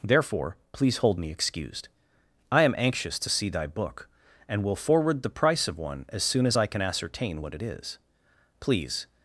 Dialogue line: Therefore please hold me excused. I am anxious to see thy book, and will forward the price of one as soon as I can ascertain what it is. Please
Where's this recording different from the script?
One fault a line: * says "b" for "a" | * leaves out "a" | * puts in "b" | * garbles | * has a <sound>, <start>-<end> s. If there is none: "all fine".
all fine